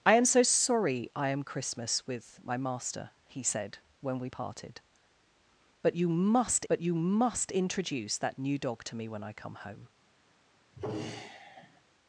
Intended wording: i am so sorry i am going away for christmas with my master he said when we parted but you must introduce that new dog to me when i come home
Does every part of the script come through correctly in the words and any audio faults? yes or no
no